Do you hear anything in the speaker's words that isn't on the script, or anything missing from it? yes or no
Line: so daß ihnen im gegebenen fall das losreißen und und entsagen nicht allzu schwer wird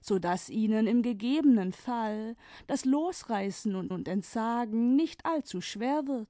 no